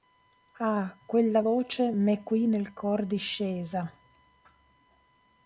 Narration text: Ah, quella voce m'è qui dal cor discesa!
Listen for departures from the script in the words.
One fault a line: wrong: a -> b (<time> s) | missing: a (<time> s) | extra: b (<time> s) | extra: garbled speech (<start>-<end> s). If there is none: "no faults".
wrong: dal -> nel (2.4 s)